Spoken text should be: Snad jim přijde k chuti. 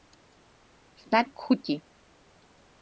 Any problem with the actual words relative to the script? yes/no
yes